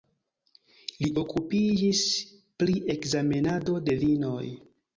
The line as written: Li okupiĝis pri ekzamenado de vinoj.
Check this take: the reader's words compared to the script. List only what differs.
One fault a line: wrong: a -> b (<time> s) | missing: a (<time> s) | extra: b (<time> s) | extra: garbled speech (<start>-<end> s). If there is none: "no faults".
no faults